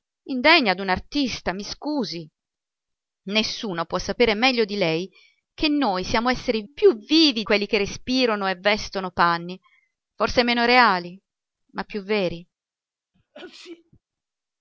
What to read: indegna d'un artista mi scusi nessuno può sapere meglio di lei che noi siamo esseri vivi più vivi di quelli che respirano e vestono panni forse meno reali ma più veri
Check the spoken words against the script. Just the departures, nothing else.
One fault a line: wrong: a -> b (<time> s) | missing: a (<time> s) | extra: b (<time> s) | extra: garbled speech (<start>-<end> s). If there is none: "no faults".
missing: vivi (6.6 s)
missing: di (7.4 s)